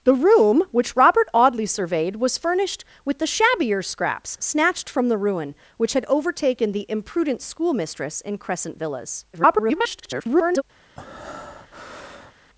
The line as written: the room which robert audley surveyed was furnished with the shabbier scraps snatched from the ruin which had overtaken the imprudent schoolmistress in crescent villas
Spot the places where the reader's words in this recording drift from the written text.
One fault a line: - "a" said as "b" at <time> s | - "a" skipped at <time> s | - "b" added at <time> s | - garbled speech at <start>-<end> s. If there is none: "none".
- garbled speech at 9.3-10.6 s